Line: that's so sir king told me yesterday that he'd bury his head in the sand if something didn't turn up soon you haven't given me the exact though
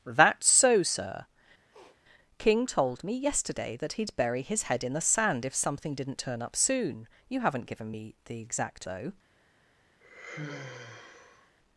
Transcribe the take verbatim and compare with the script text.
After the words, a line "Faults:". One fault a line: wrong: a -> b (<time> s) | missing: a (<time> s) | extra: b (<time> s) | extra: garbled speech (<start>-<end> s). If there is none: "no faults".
that's so sir king told me yesterday that he'd bury his head in the sand if something didn't turn up soon you haven't given me the exact though
Faults:
no faults